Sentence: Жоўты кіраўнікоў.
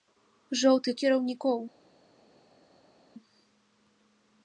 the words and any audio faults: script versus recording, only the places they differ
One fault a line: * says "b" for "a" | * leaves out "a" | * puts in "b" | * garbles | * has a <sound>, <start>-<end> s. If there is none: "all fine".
all fine